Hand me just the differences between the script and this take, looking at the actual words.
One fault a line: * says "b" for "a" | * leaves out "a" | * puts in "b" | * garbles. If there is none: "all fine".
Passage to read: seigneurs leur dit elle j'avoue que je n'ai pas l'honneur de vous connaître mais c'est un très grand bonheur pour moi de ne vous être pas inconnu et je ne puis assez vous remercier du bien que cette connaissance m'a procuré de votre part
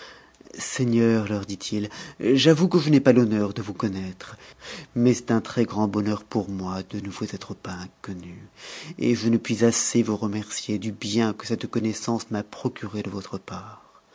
* says "il" for "elle"